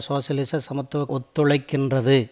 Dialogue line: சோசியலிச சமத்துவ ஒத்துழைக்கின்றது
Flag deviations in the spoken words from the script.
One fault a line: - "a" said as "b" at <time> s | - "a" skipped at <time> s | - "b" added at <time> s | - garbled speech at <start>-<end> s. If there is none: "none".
none